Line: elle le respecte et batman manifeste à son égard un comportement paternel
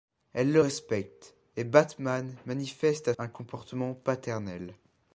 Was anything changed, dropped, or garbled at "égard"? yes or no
yes